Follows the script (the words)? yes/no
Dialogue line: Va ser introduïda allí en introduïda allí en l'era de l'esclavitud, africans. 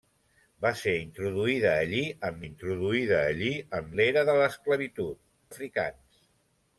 yes